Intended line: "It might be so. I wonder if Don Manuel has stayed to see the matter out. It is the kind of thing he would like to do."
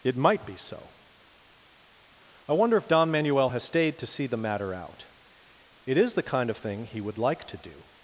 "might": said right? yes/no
yes